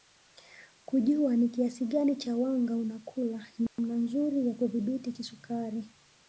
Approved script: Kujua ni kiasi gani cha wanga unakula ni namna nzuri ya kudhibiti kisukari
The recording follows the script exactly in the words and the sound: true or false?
false